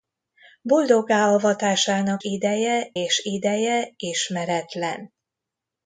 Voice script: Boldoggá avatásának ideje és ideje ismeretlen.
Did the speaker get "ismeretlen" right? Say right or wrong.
right